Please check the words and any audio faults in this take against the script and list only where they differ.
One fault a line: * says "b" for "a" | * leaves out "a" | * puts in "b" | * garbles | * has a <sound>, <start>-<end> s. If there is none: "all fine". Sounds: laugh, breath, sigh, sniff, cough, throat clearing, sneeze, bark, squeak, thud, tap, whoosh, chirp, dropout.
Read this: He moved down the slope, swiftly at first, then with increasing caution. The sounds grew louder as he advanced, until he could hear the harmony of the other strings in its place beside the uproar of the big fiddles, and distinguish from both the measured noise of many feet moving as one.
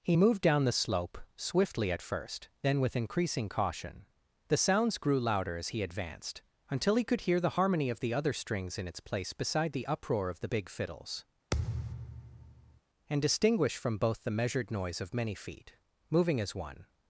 * has a thud, 11.5-12.8 s